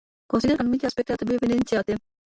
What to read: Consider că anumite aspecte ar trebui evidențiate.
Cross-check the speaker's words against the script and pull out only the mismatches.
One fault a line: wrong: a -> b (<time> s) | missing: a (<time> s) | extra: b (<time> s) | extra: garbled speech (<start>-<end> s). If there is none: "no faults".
no faults